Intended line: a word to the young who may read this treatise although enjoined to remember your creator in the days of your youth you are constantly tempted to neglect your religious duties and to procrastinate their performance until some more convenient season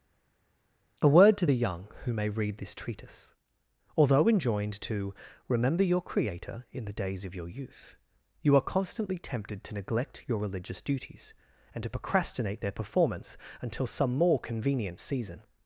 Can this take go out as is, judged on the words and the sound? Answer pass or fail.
pass